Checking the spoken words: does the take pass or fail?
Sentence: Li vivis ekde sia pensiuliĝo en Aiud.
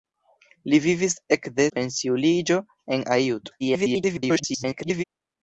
fail